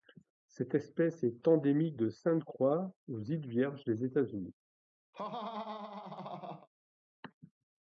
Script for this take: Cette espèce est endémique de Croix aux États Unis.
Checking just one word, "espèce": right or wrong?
right